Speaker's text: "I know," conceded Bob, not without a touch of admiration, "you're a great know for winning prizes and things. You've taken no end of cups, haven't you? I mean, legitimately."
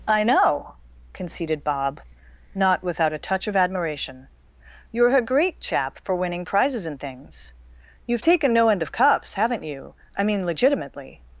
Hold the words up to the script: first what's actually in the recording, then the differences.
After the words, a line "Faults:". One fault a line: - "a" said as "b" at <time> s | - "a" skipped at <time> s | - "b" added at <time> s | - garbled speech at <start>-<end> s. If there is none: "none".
"I know," conceded Bob, not without a touch of admiration, "you're a great chap for winning prizes and things. You've taken no end of cups, haven't you? I mean, legitimately."
Faults:
- "know" said as "chap" at 5.6 s